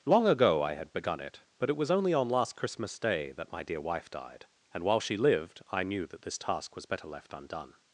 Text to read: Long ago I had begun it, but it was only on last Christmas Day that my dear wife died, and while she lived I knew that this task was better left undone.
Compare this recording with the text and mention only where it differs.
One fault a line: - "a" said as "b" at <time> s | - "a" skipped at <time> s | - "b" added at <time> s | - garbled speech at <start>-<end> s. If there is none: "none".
none